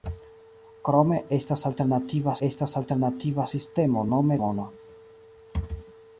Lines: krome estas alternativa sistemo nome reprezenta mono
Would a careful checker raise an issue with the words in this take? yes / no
yes